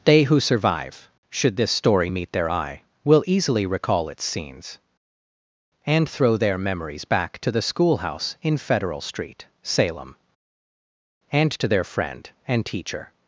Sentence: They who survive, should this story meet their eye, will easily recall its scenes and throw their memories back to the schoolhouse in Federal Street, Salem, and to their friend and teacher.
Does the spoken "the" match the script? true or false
true